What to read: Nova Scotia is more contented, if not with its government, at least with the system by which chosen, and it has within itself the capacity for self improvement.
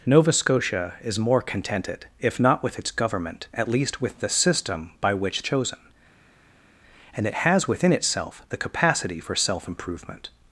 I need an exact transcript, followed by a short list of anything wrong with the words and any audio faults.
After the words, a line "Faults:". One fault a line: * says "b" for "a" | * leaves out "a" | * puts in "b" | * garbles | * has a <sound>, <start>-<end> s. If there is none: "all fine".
Nova Scotia is more contented, if not with its government, at least with the system by which chosen, and it has within itself the capacity for self improvement.
Faults:
all fine